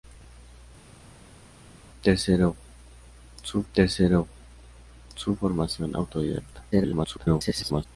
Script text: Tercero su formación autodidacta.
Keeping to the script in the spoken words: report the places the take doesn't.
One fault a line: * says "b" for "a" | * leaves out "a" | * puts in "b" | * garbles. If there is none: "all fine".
* puts in "tercero su"
* garbles